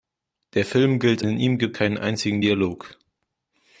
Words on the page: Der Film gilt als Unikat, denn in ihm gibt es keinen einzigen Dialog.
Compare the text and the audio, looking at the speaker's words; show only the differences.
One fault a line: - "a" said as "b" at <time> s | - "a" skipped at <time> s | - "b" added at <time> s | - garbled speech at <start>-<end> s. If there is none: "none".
- "als Unikat denn" skipped at 1.2 s
- "es" skipped at 1.8 s